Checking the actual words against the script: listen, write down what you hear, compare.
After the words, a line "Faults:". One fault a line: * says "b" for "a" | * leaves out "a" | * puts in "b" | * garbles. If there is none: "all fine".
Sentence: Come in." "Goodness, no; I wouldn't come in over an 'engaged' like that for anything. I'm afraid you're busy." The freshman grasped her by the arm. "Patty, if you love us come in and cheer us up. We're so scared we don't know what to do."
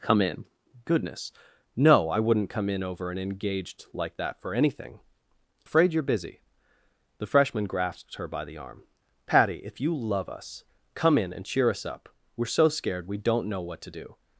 Come in." "Goodness, no; I wouldn't come in over an 'engaged' like that for anything. Afraid you're busy." The freshman grasped her by the arm. "Patty, if you love us come in and cheer us up. We're so scared we don't know what to do."
Faults:
* leaves out "I'm"